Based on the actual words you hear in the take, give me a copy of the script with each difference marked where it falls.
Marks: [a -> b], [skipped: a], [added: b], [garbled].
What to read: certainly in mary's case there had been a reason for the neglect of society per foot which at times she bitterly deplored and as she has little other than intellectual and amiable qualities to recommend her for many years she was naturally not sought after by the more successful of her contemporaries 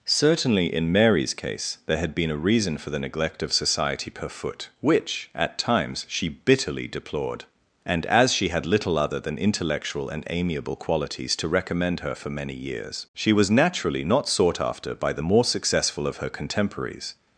certainly in mary's case there had been a reason for the neglect of society per foot which at times she bitterly deplored and as she [has -> had] little other than intellectual and amiable qualities to recommend her for many years she was naturally not sought after by the more successful of her contemporaries